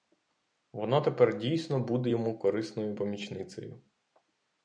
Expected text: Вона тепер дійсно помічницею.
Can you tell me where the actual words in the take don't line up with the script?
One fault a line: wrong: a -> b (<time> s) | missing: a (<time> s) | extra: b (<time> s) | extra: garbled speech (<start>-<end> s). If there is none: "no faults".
extra: буде йому корисною (1.8 s)